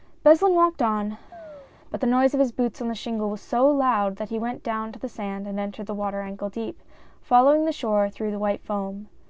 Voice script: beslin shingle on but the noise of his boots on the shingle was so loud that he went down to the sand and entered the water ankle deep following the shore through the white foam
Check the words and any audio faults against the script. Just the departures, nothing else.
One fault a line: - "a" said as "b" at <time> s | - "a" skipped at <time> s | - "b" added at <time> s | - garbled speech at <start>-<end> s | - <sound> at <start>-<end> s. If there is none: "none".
- "shingle" said as "walked" at 0.6 s
- chirp at 1.3-1.7 s